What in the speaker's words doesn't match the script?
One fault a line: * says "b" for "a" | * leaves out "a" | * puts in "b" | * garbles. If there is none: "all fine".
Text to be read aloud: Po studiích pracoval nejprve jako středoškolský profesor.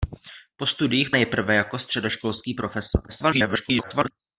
* leaves out "pracoval"
* garbles